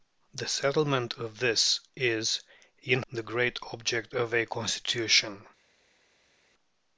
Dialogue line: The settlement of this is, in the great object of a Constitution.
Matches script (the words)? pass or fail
pass